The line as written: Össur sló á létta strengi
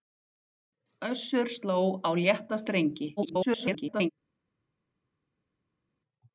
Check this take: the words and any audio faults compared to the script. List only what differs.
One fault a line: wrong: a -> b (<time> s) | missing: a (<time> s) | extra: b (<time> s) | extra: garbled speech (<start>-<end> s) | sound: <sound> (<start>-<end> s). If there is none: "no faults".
extra: garbled speech (3.2-4.1 s)